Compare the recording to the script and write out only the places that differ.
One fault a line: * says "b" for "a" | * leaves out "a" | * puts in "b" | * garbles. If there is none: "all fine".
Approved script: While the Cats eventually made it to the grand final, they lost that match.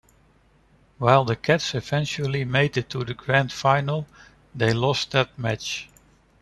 all fine